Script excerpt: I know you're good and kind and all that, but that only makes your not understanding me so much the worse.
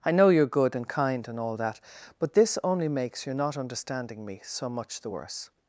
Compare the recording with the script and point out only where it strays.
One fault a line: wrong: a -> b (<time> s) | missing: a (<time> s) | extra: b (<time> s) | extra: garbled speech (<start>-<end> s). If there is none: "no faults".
wrong: that -> this (2.3 s)